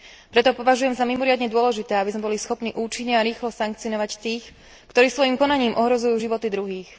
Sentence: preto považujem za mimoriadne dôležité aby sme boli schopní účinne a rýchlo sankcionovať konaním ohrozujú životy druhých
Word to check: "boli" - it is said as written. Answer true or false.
true